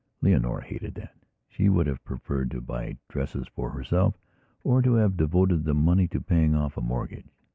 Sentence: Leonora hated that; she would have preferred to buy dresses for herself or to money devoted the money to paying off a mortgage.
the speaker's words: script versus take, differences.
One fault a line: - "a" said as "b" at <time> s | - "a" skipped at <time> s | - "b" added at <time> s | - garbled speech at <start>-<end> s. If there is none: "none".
- "money" said as "have" at 5.0 s